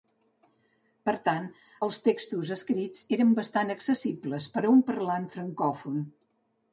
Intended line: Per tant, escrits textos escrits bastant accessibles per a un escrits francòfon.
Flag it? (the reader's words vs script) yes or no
yes